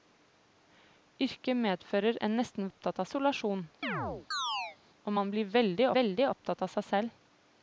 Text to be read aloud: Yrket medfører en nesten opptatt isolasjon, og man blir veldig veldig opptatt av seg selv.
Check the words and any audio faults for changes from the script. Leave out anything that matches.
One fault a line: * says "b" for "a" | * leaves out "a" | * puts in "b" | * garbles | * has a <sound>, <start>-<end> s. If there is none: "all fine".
* has a chirp, 3.8-4.8 s